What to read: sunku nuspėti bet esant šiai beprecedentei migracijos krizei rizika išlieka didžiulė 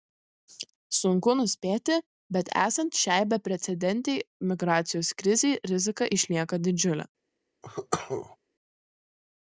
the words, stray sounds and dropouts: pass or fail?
fail